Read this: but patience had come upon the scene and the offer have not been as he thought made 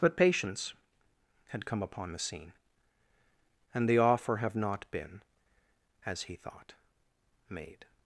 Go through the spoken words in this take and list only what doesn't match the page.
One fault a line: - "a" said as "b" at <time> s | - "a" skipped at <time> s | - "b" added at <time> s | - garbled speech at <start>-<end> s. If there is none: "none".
none